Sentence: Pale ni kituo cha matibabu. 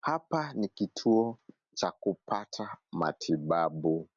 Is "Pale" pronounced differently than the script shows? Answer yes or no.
yes